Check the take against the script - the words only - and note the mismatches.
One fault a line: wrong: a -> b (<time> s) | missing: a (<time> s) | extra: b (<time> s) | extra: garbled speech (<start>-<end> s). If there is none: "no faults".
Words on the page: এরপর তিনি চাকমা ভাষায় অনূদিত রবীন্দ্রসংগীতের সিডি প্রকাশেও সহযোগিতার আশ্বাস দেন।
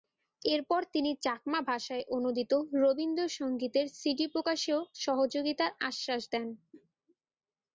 no faults